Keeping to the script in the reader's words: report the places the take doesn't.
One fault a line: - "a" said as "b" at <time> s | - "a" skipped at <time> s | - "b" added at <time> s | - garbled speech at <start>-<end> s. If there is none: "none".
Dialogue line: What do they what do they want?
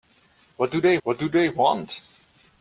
none